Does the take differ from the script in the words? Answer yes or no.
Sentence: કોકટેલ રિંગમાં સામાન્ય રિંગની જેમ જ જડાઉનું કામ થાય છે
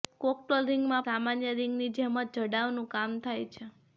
no